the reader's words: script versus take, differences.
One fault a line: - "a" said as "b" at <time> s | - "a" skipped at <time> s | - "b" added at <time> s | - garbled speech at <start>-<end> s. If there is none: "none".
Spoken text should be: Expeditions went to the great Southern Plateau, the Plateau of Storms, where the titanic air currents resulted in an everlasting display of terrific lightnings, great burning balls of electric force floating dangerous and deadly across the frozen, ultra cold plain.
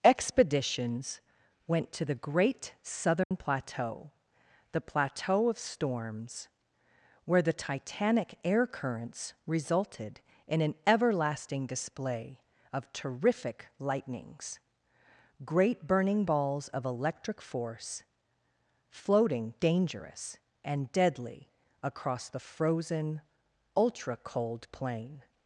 none